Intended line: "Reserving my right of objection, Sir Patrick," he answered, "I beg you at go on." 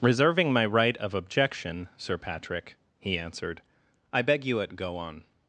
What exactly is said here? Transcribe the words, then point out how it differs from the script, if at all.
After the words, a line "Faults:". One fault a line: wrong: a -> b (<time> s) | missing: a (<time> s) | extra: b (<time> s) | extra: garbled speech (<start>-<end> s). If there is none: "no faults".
"Reserving my right of objection, Sir Patrick," he answered, "I beg you at go on."
Faults:
no faults